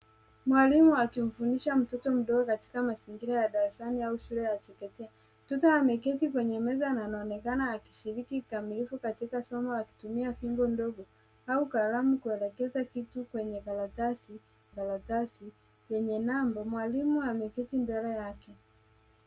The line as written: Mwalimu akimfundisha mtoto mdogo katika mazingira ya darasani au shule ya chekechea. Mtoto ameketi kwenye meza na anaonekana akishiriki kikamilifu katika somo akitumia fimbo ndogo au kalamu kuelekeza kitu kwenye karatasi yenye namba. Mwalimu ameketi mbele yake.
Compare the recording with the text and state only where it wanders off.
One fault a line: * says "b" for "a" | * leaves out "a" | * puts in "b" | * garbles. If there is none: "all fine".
* puts in "karatasi"